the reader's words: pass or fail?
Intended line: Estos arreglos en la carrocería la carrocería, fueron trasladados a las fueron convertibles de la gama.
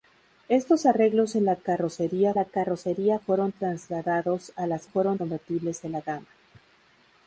pass